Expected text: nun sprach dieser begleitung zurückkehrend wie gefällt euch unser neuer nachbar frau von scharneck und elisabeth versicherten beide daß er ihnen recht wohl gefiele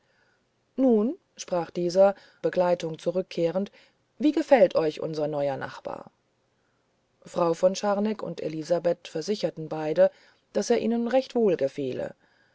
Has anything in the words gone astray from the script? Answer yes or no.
no